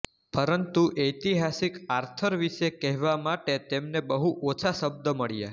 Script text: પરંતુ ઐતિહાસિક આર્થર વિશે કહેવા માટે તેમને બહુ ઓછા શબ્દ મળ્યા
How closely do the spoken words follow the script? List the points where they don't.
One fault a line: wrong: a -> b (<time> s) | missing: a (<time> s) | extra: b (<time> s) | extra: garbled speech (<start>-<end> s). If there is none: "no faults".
no faults